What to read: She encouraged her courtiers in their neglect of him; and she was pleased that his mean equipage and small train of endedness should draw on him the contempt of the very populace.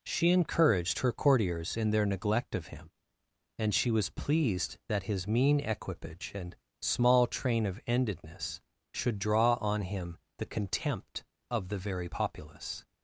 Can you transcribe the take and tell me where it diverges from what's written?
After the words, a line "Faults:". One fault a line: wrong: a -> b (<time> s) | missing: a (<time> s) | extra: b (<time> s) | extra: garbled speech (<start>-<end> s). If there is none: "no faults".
She encouraged her courtiers in their neglect of him; and she was pleased that his mean equipage and small train of endedness should draw on him the contempt of the very populace.
Faults:
no faults